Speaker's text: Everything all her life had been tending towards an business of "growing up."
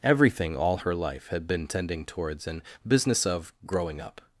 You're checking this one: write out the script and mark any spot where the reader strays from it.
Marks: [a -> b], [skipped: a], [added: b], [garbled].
Everything all her life had been tending towards an business of "growing up."